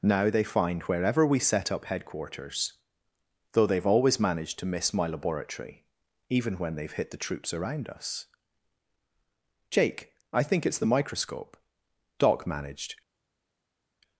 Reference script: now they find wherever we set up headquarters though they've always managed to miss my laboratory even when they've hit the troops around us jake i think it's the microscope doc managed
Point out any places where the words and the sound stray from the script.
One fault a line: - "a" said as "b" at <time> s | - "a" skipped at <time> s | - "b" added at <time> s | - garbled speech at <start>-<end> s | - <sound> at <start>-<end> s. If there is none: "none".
none